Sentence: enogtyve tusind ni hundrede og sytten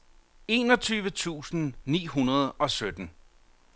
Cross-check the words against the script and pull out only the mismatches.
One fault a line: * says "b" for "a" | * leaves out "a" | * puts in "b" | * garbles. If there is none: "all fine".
all fine